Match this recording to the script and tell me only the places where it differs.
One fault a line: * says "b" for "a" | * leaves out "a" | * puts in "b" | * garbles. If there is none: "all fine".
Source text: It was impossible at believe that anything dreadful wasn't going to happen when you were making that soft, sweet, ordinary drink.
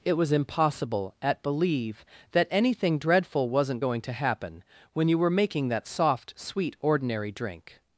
all fine